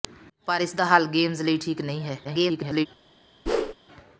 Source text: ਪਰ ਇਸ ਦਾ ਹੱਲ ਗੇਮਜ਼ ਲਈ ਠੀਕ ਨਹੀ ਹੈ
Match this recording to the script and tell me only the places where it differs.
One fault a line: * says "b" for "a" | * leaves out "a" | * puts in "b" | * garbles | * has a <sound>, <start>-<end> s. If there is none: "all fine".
* garbles
* has a whoosh, 3.5-3.7 s